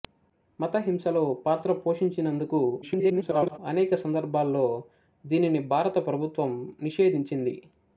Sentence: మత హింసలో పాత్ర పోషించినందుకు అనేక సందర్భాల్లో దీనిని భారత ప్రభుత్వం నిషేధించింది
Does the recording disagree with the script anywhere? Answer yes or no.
yes